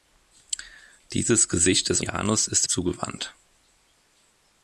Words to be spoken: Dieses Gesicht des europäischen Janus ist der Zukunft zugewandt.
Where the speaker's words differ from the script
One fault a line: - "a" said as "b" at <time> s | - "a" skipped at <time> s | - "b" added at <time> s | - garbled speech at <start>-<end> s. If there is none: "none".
- "europäischen" skipped at 2.0 s
- "der Zukunft" skipped at 2.7 s